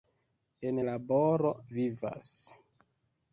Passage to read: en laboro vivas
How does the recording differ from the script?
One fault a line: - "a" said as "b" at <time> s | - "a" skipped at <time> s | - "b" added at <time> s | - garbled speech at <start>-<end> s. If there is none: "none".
none